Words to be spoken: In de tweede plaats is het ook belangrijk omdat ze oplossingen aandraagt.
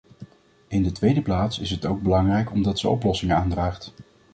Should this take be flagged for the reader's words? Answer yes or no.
no